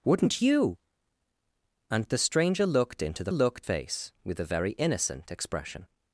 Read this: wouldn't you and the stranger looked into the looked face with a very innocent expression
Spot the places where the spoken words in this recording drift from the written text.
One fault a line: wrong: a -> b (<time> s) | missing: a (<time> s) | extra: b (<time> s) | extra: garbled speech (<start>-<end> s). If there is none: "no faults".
no faults